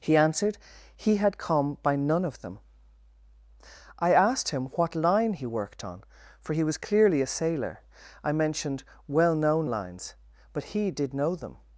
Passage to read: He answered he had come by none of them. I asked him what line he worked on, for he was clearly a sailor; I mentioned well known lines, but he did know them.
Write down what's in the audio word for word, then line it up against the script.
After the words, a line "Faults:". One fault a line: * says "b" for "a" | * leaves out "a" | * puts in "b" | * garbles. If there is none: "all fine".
He answered he had come by none of them. I asked him what line he worked on, for he was clearly a sailor; I mentioned well known lines, but he did know them.
Faults:
all fine